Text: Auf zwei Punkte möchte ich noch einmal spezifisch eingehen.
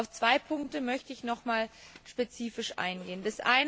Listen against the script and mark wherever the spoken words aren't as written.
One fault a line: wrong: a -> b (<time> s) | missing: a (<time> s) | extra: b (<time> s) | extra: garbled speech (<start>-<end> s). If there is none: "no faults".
no faults